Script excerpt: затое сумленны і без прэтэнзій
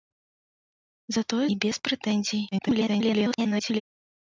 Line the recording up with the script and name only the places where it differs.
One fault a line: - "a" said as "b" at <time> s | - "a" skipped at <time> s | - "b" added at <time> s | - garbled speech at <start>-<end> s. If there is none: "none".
- "сумленны" skipped at 1.5 s
- garbled speech at 2.5-3.8 s